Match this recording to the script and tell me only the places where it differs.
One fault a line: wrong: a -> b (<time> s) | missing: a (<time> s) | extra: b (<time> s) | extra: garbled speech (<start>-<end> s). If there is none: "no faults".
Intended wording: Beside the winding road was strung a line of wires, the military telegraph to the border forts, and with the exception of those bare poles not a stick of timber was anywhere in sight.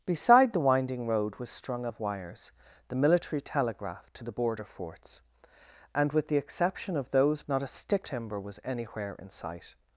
missing: line (1.9 s)
missing: bare poles (7.4 s)
missing: of (8.1 s)